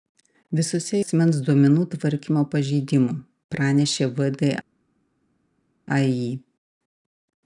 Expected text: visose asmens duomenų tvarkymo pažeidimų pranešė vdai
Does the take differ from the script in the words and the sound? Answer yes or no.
no